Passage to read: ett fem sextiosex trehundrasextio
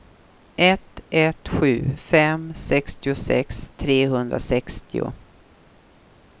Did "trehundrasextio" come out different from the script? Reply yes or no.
no